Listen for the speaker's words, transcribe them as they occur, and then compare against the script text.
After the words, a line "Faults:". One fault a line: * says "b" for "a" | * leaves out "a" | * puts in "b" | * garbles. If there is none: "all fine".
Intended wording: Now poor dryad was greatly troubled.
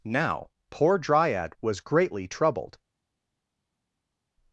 Now poor dryad was greatly troubled.
Faults:
all fine